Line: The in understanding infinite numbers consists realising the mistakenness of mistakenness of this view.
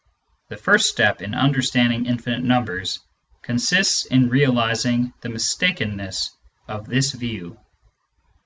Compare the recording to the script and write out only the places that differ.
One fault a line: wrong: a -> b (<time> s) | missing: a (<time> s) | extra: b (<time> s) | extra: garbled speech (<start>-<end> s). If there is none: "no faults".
extra: first step (0.6 s)
extra: in (4.0 s)
missing: mistakenness of (6.9 s)